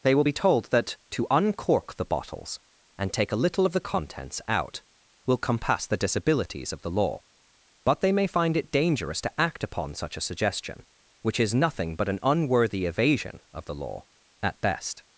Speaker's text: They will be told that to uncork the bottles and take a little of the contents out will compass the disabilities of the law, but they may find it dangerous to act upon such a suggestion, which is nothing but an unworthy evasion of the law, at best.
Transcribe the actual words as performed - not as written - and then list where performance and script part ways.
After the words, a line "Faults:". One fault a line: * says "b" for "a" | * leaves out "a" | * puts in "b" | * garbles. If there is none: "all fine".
They will be told that to uncork the bottles and take a little of the contents out will compass the disabilities of the law, but they may find it dangerous to act upon such a suggestion, which is nothing but an unworthy evasion of the law, at best.
Faults:
all fine